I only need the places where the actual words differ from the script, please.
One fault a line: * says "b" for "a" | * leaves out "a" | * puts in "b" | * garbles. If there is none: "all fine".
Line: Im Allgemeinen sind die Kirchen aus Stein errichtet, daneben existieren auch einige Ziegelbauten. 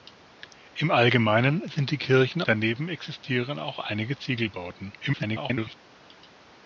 * leaves out "aus Stein errichtet"
* garbles